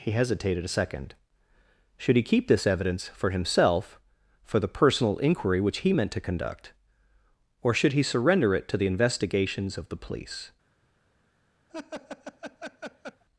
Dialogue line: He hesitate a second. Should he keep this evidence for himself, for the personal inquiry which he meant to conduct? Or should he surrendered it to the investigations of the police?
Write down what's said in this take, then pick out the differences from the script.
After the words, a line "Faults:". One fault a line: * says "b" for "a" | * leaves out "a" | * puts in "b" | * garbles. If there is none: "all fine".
He hesitated a second. Should he keep this evidence for himself, for the personal inquiry which he meant to conduct? Or should he surrender it to the investigations of the police?
Faults:
* says "hesitated" for "hesitate"
* says "surrender" for "surrendered"